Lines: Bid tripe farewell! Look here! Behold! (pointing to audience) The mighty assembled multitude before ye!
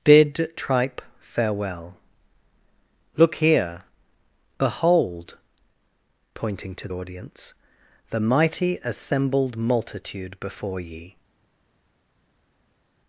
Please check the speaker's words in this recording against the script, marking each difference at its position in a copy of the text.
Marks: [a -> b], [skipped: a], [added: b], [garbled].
Bid tripe farewell! Look here! Behold! (pointing to audience) The mighty assembled multitude before ye!